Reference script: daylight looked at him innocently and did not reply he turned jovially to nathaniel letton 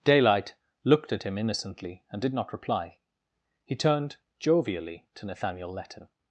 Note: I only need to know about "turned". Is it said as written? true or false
true